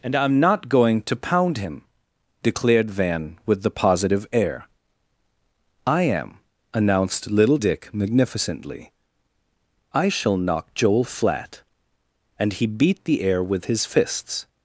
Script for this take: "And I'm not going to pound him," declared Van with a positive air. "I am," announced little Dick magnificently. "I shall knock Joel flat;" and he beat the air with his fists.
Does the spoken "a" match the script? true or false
false